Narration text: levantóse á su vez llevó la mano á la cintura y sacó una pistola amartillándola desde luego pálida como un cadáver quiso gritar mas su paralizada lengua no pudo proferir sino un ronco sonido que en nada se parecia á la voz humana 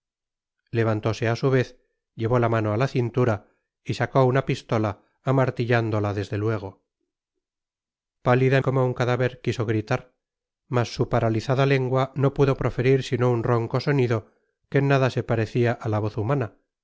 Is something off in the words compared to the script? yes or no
no